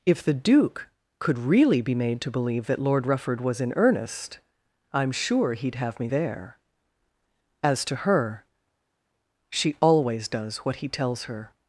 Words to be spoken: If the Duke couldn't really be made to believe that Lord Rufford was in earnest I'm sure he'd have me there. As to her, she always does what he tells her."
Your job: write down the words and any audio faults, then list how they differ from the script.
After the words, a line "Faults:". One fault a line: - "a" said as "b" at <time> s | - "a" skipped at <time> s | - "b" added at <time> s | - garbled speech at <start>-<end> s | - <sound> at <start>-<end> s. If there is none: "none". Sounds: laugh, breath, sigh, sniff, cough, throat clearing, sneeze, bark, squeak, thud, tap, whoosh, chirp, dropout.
If the Duke could really be made to believe that Lord Rufford was in earnest I'm sure he'd have me there. As to her, she always does what he tells her."
Faults:
- "couldn't" said as "could" at 1.2 s